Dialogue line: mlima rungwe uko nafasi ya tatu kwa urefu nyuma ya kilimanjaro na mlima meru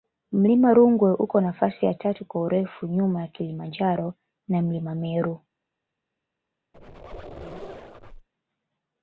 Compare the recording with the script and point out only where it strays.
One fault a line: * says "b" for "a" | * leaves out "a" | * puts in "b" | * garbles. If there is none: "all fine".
all fine